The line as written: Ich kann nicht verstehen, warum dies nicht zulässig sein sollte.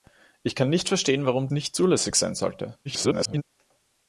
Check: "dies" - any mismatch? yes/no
yes